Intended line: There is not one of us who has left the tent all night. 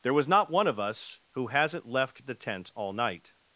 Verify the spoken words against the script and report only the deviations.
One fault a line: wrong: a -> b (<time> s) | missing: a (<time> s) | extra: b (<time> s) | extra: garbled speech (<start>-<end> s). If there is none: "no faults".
wrong: is -> was (0.1 s)
wrong: has -> hasn't (1.5 s)